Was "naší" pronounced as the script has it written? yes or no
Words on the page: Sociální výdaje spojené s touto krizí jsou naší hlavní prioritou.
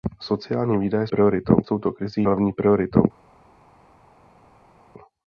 no